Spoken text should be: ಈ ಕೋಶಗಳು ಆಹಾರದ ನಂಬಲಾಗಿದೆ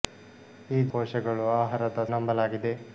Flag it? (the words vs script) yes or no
no